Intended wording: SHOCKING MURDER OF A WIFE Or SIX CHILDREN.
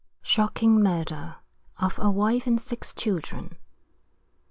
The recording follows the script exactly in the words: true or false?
false